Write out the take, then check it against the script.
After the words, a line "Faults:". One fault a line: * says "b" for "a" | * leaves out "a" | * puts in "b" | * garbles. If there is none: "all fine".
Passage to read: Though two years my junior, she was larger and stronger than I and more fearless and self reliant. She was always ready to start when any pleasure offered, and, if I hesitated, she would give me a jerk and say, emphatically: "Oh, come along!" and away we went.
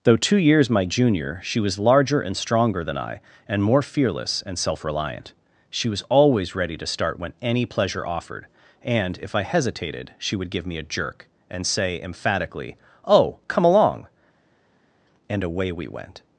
Though two years my junior, she was larger and stronger than I and more fearless and self reliant. She was always ready to start when any pleasure offered, and, if I hesitated, she would give me a jerk and say, emphatically: "Oh, come along!" and away we went.
Faults:
all fine